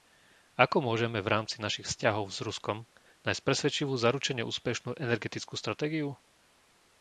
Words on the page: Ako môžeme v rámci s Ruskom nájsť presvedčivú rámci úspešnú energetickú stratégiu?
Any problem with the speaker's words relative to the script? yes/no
yes